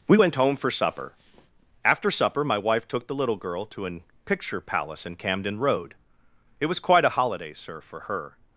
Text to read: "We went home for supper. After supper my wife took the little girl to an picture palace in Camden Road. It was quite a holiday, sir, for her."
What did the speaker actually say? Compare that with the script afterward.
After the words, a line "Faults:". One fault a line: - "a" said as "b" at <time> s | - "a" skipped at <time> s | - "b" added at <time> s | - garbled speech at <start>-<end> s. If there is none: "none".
"We went home for supper. After supper my wife took the little girl to an picture palace in Camden Road. It was quite a holiday, sir, for her."
Faults:
none